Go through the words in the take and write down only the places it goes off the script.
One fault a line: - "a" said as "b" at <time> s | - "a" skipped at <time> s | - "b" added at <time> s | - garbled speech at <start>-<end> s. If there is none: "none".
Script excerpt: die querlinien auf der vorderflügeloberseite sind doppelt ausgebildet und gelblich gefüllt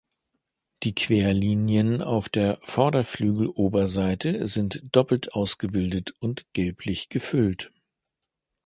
none